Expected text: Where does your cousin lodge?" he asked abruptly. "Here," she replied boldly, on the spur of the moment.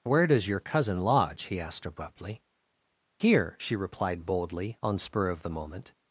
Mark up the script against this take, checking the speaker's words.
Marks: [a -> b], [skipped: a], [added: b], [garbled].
Where does your cousin lodge?" he asked abruptly. "Here," she replied boldly, on [skipped: the] spur of the moment.